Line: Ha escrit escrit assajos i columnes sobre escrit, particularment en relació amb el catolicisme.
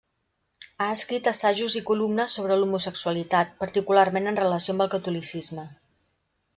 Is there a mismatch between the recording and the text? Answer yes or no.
yes